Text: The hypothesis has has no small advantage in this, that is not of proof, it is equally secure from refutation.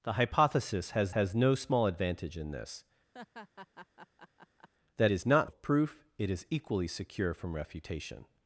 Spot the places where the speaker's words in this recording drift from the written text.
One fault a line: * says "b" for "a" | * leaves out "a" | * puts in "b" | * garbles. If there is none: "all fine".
all fine